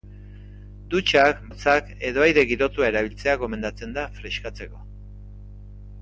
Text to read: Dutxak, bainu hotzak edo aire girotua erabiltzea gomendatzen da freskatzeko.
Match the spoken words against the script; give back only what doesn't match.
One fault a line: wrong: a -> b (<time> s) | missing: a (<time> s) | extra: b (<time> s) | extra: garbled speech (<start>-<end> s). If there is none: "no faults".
missing: bainu (1.4 s)